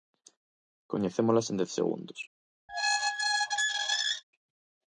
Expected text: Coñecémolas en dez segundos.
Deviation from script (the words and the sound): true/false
true